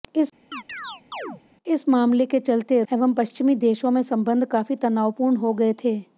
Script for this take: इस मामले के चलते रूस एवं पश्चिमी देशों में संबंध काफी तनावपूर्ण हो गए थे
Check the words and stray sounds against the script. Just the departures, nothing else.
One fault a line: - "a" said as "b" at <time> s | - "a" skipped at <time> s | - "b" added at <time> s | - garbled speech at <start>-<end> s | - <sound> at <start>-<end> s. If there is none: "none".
- chirp at 0.5-1.4 s
- "रूस" skipped at 2.8 s